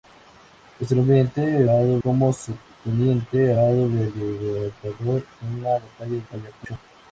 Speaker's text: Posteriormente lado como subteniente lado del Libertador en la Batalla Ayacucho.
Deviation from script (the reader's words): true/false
false